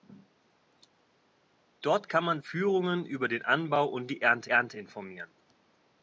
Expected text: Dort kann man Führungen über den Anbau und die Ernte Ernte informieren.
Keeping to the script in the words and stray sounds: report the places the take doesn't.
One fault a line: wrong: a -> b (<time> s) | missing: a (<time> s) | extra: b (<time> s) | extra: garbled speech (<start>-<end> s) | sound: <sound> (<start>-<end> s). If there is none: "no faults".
no faults